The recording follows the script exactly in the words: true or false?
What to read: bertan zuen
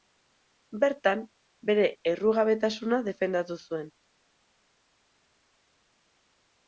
false